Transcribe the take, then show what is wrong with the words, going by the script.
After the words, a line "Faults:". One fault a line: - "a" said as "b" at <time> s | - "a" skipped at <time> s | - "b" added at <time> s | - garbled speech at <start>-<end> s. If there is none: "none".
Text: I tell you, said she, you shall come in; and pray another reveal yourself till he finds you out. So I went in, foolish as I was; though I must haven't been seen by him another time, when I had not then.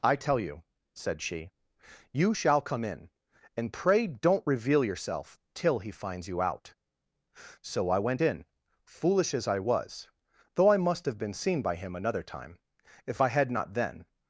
I tell you, said she, you shall come in; and pray don't reveal yourself till he finds you out. So I went in, foolish as I was; though I must have been seen by him another time, if I had not then.
Faults:
- "another" said as "don't" at 4.1 s
- "haven't" said as "have" at 11.1 s
- "when" said as "if" at 13.1 s